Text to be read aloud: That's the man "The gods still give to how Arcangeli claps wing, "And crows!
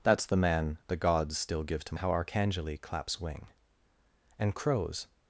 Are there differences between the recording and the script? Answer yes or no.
no